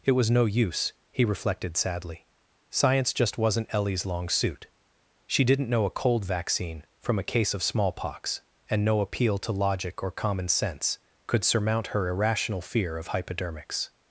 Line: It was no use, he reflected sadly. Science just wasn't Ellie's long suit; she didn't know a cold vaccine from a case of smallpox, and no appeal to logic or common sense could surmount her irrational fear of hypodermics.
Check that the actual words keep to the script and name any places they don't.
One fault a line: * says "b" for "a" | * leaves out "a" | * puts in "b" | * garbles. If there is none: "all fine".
all fine